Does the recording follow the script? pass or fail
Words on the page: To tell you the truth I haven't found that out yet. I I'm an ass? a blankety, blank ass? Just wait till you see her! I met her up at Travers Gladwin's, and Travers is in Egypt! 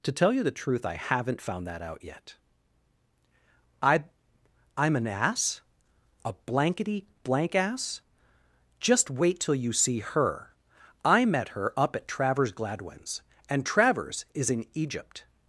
pass